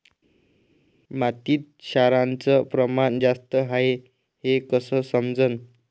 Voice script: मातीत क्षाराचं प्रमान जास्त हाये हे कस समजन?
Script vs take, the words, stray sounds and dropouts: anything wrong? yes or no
no